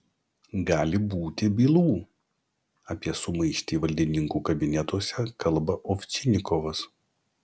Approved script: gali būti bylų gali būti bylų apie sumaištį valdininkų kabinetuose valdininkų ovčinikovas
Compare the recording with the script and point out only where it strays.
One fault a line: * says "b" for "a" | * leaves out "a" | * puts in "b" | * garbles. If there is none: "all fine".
* leaves out "gali būti bylų"
* says "kalba" for "valdininkų"